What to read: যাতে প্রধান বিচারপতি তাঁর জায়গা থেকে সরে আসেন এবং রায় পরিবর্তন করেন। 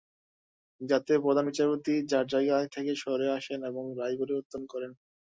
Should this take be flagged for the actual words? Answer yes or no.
no